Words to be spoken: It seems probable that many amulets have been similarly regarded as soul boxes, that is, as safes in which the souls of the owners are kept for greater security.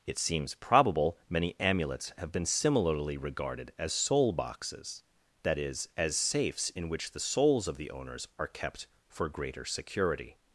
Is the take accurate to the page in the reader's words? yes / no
no